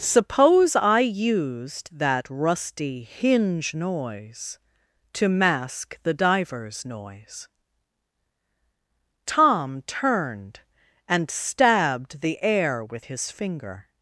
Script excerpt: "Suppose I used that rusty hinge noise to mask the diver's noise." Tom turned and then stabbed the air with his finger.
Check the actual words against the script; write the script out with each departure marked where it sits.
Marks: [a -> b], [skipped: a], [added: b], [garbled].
"Suppose I used that rusty hinge noise to mask the diver's noise." Tom turned and [skipped: then] stabbed the air with his finger.